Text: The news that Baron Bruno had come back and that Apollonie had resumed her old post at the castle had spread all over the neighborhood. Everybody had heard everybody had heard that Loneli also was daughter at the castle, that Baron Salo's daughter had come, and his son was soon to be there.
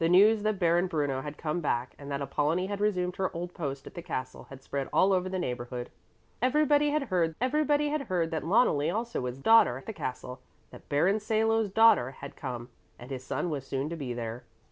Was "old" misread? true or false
false